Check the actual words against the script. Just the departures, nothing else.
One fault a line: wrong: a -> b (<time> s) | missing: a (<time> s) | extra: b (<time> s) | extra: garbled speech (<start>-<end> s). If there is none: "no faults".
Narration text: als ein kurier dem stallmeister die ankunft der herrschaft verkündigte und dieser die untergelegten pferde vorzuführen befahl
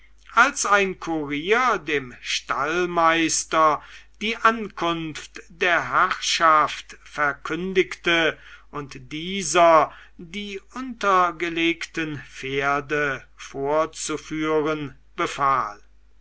no faults